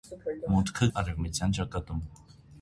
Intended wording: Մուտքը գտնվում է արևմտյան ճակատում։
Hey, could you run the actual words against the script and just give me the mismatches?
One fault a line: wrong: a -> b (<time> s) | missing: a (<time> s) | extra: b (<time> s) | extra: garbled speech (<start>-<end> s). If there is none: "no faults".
missing: գտնվում (0.9 s)